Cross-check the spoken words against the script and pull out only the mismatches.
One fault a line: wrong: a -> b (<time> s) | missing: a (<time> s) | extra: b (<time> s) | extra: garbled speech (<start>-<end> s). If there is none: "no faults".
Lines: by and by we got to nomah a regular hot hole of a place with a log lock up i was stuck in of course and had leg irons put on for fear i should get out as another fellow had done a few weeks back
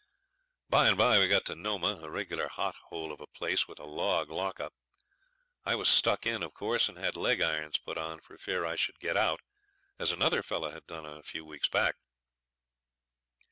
no faults